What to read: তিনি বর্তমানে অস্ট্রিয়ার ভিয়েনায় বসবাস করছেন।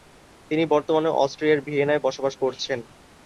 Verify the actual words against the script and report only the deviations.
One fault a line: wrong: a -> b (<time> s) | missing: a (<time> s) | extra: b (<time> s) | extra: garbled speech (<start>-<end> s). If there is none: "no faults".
no faults